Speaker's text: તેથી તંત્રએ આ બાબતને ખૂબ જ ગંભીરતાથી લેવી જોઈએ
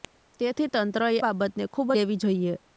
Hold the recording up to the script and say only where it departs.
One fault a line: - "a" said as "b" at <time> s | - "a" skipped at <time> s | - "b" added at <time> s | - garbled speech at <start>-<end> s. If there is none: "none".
- "આ" skipped at 1.1 s
- "જ ગંભીરતાથી" skipped at 1.9 s